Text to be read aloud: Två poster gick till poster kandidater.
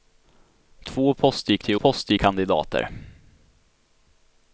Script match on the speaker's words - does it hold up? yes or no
yes